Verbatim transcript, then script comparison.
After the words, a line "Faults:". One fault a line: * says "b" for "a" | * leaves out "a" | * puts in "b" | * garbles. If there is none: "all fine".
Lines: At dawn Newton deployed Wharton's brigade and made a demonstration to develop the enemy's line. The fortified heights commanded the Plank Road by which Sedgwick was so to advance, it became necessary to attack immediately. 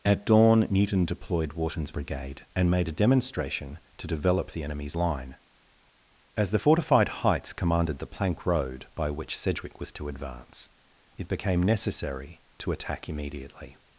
At dawn Newton deployed Wharton's brigade and made a demonstration to develop the enemy's line. As the fortified heights commanded the Plank Road by which Sedgwick was to advance, it became necessary to attack immediately.
Faults:
* puts in "As"
* leaves out "so"